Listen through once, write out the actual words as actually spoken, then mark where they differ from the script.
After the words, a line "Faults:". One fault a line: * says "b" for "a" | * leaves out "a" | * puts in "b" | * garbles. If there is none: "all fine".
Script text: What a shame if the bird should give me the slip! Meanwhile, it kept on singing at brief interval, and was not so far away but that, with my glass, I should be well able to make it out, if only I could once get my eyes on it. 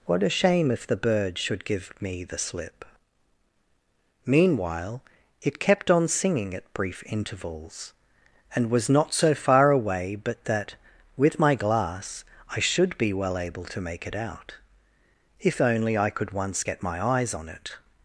What a shame if the bird should give me the slip! Meanwhile, it kept on singing at brief intervals, and was not so far away but that, with my glass, I should be well able to make it out, if only I could once get my eyes on it.
Faults:
* says "intervals" for "interval"